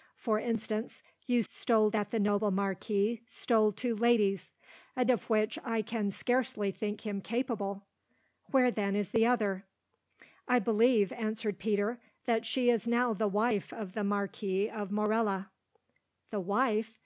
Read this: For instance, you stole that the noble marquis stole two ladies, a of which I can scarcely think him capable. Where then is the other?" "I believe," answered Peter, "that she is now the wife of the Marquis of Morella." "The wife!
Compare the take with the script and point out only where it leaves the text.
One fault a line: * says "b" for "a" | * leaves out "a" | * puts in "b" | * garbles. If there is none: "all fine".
all fine